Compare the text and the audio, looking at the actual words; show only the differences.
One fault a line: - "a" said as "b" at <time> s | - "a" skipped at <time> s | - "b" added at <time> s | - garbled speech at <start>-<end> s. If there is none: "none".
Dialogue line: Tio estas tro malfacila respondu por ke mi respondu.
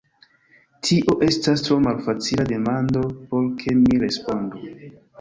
- "respondu" said as "demando" at 2.5 s